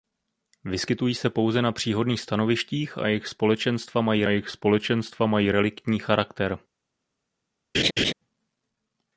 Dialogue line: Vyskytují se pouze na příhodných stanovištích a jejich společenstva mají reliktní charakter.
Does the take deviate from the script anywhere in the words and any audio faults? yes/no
yes